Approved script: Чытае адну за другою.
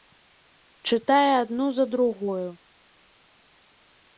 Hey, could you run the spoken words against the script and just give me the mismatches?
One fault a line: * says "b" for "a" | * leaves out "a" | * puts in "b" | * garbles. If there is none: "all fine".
all fine